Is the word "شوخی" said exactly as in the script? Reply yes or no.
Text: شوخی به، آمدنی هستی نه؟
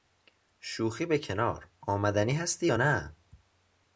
yes